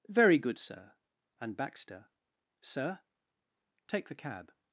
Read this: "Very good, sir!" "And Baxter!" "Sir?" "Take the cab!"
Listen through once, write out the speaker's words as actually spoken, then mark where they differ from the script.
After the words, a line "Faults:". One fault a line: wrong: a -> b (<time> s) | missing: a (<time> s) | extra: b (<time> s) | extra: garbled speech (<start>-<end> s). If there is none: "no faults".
"Very good, sir!" "And Baxter!" "Sir?" "Take the cab!"
Faults:
no faults